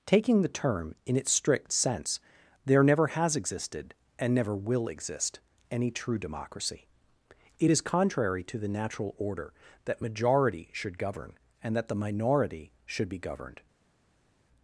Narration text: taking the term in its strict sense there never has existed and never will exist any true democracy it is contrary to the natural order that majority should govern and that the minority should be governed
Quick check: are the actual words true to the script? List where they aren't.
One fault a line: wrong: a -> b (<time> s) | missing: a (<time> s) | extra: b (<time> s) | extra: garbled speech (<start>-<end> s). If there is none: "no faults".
no faults